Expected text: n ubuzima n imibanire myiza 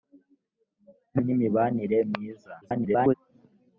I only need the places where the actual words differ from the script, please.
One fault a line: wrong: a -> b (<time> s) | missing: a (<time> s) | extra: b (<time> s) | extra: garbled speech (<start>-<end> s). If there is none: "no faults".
missing: ubuzima (1.2 s)
extra: garbled speech (2.6-3.1 s)